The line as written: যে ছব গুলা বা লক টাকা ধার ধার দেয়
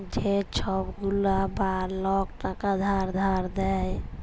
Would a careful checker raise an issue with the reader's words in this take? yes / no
no